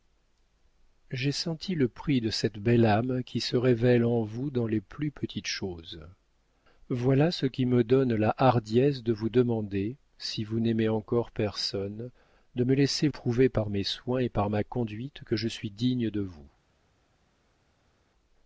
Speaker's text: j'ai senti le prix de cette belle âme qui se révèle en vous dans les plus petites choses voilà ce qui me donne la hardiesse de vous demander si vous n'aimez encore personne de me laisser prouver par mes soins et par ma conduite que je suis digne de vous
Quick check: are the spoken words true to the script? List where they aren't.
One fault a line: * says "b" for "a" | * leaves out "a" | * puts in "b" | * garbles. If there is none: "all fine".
all fine